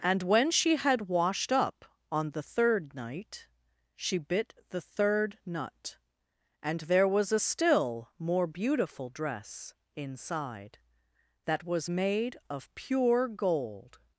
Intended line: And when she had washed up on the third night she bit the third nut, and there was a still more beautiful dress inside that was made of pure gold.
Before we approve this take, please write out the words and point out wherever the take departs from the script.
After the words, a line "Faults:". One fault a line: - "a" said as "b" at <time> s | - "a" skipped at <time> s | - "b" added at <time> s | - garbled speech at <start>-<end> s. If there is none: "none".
And when she had washed up on the third night she bit the third nut, and there was a still more beautiful dress inside that was made of pure gold.
Faults:
none